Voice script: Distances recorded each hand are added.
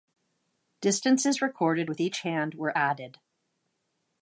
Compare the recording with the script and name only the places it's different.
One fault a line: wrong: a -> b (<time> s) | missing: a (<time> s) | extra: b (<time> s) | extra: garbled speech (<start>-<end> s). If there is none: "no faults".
extra: with (1.9 s)
wrong: are -> were (2.5 s)